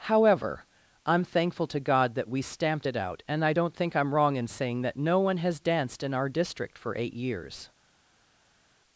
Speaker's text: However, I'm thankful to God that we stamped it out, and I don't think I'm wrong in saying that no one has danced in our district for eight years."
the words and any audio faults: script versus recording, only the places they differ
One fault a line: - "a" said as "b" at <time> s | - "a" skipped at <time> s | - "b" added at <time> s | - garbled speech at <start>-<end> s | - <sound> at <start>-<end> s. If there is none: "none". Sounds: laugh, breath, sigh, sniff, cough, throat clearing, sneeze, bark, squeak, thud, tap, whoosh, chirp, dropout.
none